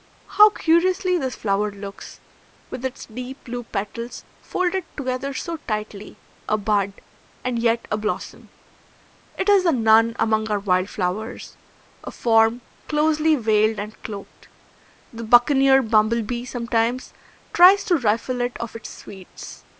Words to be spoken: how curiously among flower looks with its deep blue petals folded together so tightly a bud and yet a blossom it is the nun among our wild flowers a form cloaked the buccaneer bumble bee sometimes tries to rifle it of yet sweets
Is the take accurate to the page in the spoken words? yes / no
no